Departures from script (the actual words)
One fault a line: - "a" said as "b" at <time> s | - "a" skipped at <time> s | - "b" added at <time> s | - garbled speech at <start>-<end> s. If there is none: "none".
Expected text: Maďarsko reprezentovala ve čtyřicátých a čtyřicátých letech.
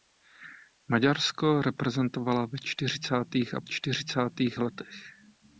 none